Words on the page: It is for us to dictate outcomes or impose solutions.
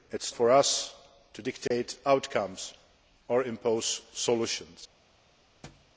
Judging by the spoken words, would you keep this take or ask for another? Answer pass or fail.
pass